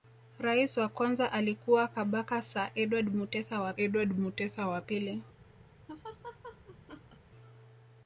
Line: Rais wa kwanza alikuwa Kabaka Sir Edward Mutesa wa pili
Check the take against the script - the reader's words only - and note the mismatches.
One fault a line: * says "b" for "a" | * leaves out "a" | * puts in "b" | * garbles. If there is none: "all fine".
* puts in "Edward Mutesa wa"